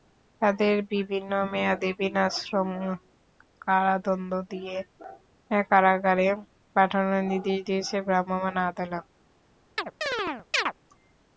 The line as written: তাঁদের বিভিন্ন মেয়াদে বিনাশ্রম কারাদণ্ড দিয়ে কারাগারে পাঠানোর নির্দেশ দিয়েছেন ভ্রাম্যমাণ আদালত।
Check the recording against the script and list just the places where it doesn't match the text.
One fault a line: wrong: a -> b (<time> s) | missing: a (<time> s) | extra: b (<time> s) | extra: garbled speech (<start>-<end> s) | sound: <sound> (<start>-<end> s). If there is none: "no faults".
sound: chirp (9.8-10.7 s)